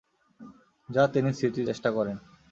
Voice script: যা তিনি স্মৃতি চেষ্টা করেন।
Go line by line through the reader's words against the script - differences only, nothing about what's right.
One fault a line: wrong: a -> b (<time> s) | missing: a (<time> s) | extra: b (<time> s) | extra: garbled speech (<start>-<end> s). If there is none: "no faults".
no faults